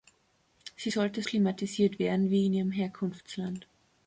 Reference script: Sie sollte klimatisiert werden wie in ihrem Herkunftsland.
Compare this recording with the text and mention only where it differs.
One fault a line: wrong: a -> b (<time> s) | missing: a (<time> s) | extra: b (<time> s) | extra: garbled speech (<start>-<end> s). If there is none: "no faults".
no faults